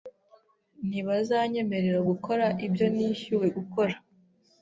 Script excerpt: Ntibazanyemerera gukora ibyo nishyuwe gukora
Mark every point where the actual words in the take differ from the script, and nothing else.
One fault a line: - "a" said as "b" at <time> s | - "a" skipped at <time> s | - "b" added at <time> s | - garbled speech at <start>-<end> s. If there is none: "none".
none